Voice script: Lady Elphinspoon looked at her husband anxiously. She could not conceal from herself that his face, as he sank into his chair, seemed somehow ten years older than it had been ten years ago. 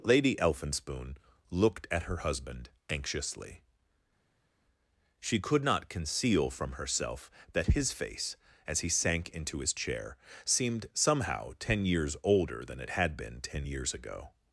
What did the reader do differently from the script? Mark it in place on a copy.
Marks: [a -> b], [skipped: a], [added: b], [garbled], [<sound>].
Lady Elphinspoon looked at her husband anxiously. She could not conceal from herself that his face, as he sank into his chair, seemed somehow ten years older than it had been ten years ago.